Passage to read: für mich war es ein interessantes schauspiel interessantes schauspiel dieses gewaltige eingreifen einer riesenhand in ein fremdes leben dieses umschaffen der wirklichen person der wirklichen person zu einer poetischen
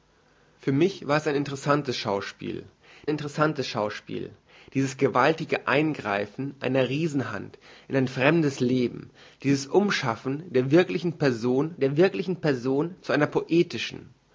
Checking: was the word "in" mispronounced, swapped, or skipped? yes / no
no